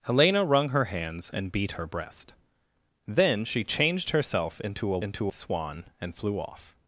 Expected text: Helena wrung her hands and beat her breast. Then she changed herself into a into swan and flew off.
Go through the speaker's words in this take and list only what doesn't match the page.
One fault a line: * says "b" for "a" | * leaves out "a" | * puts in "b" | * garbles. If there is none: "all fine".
all fine